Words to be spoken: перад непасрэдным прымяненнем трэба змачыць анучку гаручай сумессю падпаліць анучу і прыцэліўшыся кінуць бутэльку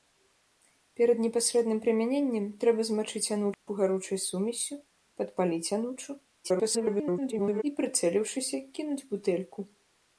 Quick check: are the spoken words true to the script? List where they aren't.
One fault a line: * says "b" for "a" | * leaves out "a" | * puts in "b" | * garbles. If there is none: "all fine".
* garbles